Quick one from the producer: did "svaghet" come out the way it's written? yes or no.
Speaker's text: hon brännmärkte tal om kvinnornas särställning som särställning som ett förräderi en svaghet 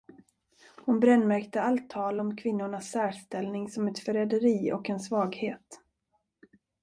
yes